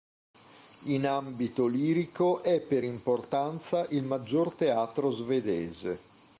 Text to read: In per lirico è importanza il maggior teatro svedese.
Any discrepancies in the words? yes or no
yes